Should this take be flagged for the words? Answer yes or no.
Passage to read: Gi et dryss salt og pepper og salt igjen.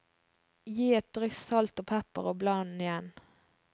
yes